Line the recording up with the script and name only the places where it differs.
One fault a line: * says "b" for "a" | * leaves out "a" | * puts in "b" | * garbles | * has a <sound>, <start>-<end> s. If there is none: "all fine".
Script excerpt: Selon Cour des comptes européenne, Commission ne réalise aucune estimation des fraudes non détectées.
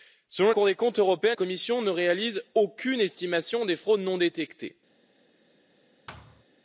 * has a thud, 6.1-6.4 s